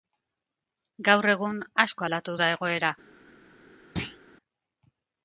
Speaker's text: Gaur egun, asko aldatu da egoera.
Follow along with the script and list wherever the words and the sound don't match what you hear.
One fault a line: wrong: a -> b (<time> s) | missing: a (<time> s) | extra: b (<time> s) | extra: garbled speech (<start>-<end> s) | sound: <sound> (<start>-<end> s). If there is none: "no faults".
sound: thud (4.0-4.2 s)